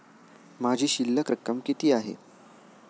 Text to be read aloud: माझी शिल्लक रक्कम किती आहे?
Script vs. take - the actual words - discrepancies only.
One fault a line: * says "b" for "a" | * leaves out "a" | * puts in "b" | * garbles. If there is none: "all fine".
all fine